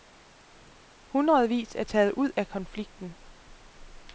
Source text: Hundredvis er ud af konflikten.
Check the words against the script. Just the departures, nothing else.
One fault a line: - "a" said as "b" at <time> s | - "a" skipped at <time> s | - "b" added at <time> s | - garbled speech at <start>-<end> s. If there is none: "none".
- "taget" added at 1.8 s